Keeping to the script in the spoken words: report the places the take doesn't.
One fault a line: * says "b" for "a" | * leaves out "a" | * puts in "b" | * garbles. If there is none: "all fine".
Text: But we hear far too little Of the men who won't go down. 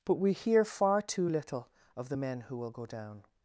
* says "will" for "won't"